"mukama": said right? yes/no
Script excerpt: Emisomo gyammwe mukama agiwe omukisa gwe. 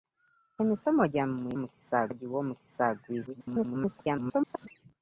no